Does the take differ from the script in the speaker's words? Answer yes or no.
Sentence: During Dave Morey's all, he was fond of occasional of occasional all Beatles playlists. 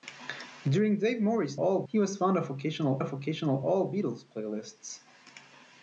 no